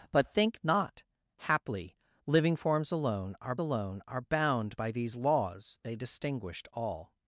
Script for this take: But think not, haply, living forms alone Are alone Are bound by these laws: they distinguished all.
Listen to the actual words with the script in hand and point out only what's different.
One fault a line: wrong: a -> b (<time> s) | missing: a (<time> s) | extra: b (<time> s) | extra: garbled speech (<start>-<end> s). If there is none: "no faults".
no faults